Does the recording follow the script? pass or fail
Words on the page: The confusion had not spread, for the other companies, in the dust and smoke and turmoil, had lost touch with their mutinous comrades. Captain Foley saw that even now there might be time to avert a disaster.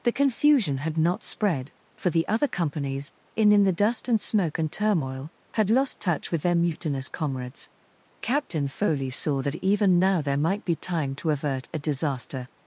fail